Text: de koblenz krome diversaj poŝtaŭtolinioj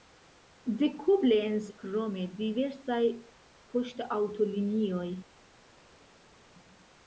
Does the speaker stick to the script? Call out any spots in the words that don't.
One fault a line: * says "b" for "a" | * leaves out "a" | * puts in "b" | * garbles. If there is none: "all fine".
all fine